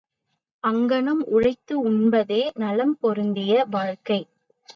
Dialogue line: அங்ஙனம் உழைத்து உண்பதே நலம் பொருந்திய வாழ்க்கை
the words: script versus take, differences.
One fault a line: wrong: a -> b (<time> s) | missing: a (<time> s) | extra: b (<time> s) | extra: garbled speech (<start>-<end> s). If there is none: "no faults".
no faults